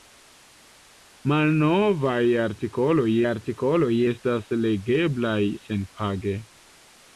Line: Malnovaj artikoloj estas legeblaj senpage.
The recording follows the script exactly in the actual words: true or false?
false